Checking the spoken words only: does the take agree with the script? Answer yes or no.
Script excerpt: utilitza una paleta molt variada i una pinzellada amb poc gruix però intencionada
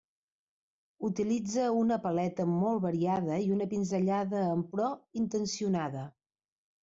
no